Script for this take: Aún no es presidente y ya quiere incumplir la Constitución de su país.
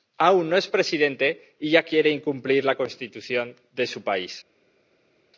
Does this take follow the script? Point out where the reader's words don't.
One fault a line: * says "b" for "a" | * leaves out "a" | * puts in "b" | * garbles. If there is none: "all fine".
all fine